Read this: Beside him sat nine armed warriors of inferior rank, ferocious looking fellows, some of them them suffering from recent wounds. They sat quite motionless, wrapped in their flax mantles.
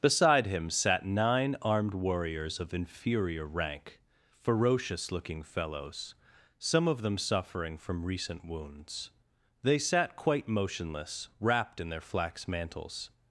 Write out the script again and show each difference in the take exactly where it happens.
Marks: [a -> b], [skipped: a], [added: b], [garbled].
Beside him sat nine armed warriors of inferior rank, ferocious looking fellows, some of them [skipped: them] suffering from recent wounds. They sat quite motionless, wrapped in their flax mantles.